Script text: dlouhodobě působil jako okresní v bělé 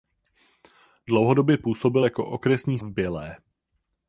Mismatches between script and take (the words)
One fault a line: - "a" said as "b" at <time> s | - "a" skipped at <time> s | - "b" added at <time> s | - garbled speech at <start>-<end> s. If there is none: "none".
none